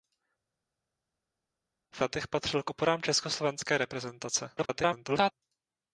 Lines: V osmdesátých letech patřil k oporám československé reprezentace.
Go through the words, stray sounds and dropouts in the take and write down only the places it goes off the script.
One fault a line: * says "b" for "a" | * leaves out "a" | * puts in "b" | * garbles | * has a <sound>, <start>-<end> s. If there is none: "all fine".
* leaves out "osmdesátých"
* garbles